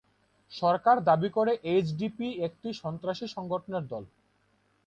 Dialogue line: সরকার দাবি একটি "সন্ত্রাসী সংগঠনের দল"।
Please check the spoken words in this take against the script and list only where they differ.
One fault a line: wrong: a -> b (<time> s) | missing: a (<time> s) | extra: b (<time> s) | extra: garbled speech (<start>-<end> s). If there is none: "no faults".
extra: করে এইচডিপি (1.3 s)